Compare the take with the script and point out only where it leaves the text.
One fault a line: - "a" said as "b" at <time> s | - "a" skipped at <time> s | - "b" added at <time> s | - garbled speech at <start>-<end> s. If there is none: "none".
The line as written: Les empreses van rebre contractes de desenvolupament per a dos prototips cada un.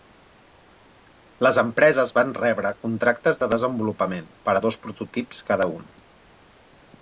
none